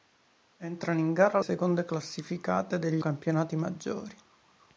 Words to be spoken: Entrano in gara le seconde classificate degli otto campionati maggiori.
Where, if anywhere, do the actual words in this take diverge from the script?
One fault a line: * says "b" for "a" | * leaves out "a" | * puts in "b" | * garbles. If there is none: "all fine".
* leaves out "le"
* leaves out "otto"